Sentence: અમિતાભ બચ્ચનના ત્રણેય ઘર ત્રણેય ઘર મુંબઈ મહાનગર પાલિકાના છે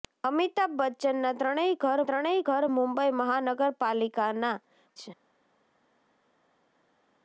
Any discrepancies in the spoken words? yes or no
no